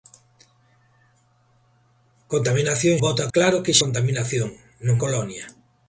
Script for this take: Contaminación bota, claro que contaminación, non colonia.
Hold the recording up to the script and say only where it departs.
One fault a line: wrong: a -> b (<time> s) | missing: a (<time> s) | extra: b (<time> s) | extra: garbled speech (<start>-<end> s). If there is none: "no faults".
no faults